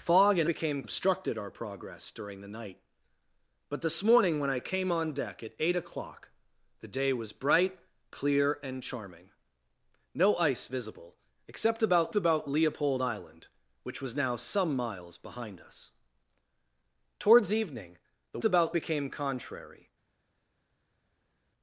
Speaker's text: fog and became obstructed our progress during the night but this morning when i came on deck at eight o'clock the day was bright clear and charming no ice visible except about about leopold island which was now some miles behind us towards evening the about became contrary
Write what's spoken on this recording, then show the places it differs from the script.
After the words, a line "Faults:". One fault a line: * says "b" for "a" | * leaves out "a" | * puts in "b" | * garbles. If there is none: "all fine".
fog and became obstructed our progress during the night but this morning when i came on deck at eight o'clock the day was bright clear and charming no ice visible except about about leopold island which was now some miles behind us towards evening the about became contrary
Faults:
all fine